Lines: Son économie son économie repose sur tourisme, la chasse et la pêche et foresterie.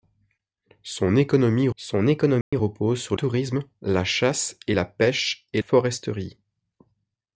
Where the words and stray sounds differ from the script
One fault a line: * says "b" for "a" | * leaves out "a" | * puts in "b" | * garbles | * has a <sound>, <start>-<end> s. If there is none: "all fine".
* has a dropout, 2.4-2.5 s